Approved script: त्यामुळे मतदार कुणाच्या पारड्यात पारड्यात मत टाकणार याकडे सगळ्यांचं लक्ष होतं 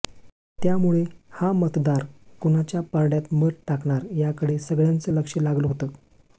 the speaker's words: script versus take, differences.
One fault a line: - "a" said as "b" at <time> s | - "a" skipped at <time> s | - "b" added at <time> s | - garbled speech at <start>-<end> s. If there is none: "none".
- "हा" added at 1.3 s
- "पारड्यात" skipped at 3.3 s
- "लागलं" added at 5.4 s